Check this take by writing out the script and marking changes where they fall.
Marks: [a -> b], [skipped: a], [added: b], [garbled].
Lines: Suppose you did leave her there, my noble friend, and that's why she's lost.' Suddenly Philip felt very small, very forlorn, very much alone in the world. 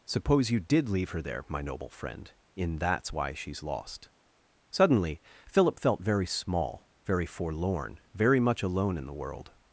Suppose you did leave her there, my noble friend, [and -> in] that's why she's lost.' Suddenly Philip felt very small, very forlorn, very much alone in the world.